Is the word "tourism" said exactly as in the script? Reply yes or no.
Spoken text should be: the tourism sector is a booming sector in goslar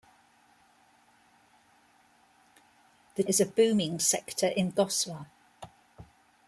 no